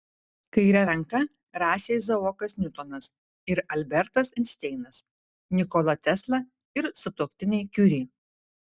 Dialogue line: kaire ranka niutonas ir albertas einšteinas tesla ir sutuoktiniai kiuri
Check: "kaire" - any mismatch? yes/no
no